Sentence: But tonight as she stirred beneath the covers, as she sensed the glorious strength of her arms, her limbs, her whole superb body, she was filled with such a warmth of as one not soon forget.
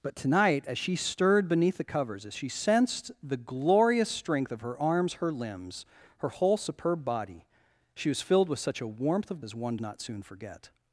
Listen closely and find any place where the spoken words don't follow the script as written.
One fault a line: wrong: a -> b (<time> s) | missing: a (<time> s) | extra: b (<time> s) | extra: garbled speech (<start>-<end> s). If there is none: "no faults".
no faults